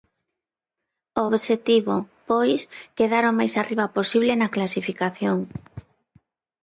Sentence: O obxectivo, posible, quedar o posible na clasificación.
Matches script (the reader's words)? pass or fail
fail